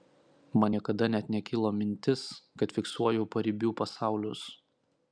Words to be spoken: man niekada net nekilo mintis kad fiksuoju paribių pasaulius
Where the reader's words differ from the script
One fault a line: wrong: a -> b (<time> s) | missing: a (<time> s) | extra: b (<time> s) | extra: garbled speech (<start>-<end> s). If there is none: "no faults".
no faults